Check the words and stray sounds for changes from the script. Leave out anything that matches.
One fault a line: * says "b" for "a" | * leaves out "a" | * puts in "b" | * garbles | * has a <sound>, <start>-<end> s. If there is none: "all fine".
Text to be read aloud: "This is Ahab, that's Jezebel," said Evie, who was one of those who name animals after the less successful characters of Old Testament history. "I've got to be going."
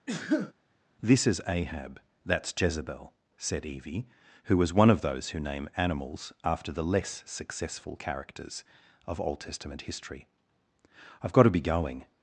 * has a sneeze, 0.1-0.5 s